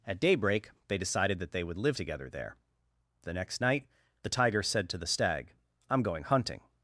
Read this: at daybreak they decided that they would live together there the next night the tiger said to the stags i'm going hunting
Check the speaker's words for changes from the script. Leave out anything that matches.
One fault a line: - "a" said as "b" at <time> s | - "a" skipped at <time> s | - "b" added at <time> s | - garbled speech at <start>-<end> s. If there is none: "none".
- "stags" said as "stag" at 5.1 s